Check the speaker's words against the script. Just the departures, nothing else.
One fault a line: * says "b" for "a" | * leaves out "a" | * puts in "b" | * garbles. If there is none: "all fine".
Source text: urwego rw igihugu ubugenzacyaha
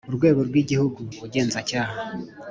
all fine